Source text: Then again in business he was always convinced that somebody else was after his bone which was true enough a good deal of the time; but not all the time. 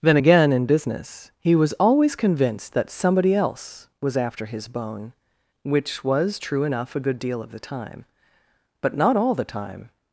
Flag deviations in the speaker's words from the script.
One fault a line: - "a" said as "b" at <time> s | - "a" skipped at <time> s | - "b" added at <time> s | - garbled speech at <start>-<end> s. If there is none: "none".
none